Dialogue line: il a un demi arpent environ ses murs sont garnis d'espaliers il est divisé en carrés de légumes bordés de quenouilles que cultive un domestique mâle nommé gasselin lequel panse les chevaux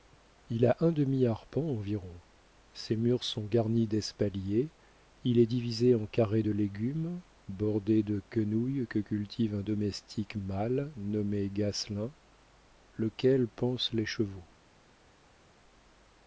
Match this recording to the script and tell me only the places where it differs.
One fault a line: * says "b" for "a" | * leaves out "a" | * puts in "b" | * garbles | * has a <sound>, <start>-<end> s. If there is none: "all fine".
all fine